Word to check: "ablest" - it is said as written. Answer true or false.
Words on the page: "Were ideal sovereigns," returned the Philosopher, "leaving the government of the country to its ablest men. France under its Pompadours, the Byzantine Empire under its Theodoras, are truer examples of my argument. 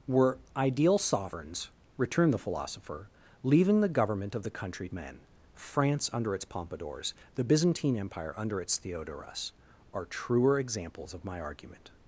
false